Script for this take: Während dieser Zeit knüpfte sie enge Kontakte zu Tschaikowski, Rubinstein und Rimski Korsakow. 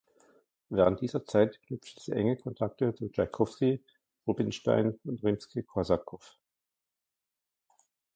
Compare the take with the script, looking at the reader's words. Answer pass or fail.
pass